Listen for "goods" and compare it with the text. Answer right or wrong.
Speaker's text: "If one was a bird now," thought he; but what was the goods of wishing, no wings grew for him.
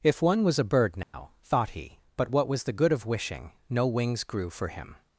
wrong